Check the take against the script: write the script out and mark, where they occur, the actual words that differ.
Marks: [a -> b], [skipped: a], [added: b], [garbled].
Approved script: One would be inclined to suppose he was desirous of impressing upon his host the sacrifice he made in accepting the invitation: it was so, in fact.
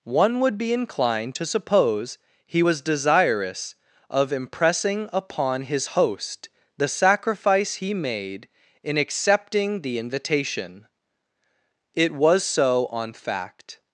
One would be inclined to suppose he was desirous of impressing upon his host the sacrifice he made in accepting the invitation: it was so, [in -> on] fact.